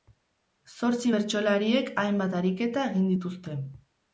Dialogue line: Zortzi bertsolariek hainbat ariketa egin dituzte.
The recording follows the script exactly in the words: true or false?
true